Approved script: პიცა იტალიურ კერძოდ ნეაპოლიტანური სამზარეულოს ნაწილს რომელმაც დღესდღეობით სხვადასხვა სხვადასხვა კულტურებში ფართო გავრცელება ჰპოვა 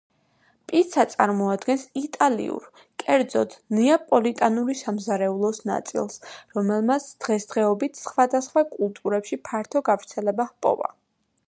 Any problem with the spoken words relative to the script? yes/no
yes